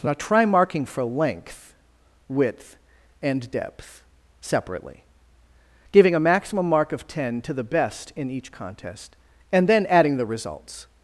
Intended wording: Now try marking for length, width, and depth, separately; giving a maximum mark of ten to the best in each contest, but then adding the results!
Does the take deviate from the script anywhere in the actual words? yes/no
yes